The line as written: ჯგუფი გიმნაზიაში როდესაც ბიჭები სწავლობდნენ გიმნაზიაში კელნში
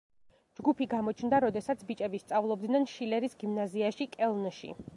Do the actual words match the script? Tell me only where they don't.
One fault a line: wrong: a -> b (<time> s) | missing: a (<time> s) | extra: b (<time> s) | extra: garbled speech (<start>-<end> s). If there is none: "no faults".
wrong: გიმნაზიაში -> გამოჩნდა (0.9 s)
extra: შილერის (3.0 s)